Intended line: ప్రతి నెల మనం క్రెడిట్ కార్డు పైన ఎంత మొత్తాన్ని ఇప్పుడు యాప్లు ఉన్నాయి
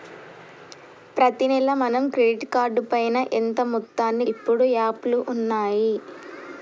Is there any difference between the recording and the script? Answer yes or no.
no